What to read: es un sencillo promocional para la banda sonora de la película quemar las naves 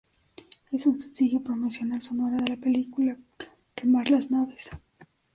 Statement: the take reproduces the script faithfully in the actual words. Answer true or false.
false